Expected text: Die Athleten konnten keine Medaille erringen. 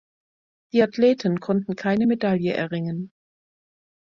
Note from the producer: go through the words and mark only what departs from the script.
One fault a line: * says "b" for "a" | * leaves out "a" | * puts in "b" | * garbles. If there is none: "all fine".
all fine